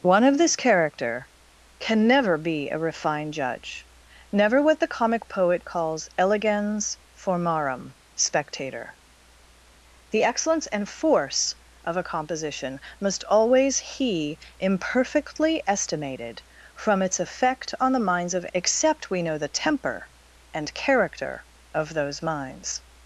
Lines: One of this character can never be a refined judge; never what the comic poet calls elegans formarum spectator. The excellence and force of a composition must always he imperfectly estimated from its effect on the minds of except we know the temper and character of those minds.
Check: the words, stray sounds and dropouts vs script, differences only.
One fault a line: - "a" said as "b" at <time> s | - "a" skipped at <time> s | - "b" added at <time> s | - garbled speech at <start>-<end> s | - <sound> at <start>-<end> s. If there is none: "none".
none